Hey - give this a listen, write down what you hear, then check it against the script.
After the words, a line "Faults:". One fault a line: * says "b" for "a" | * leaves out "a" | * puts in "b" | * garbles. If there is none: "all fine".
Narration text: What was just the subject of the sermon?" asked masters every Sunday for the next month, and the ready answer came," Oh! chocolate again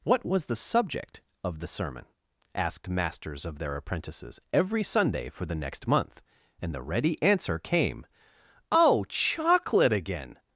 What was the subject of the sermon?" asked masters of their apprentices every Sunday for the next month, and the ready answer came," Oh! chocolate again
Faults:
* leaves out "just"
* puts in "of their apprentices"